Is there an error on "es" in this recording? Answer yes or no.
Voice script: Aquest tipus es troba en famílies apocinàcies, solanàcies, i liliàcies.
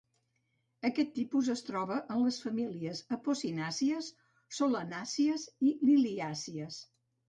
no